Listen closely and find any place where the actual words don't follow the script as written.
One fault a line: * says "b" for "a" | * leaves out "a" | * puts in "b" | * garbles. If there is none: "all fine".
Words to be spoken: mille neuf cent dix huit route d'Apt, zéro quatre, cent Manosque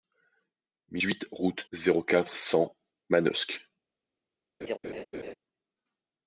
* leaves out "neuf cent dix"
* leaves out "d'Apt"